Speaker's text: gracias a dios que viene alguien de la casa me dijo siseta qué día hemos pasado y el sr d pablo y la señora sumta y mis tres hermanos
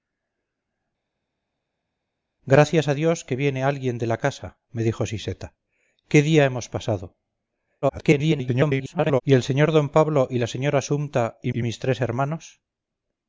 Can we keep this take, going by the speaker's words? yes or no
no